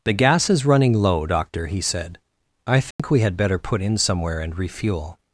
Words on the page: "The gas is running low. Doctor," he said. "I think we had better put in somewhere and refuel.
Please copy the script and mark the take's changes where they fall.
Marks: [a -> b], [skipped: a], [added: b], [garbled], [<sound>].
"The gas is running low. Doctor," he said. "I think [dropout] we had better put in somewhere and refuel.